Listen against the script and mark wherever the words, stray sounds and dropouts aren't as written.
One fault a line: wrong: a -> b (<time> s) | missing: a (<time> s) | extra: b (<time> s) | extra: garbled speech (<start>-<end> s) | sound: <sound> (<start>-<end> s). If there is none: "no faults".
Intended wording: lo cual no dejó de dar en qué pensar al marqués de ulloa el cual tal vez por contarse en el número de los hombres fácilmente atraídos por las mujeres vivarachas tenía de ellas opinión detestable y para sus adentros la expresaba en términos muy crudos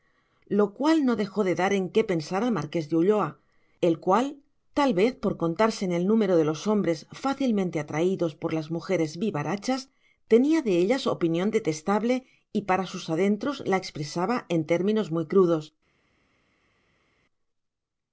no faults